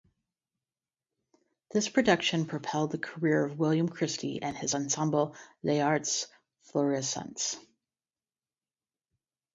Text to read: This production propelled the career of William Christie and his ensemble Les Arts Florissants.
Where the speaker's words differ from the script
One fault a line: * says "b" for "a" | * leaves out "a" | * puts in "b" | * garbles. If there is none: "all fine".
all fine